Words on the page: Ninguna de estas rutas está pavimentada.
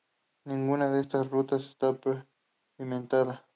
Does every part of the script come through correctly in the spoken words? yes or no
yes